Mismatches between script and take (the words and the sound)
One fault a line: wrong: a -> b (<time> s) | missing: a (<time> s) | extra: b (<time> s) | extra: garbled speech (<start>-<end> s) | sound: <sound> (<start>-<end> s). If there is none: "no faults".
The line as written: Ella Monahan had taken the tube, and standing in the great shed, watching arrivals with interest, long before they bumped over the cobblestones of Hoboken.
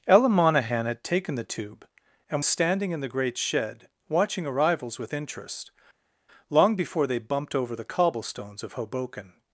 no faults